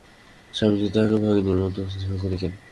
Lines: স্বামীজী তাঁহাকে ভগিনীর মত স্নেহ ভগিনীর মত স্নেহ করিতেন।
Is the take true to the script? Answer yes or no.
no